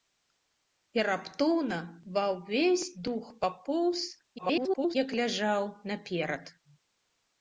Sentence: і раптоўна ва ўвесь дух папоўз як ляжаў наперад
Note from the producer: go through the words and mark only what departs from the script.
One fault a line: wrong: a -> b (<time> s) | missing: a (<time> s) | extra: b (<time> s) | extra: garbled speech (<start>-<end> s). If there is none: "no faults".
extra: garbled speech (4.4-5.0 s)